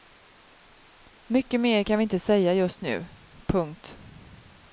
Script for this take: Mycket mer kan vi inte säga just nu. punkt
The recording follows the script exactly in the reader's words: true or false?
true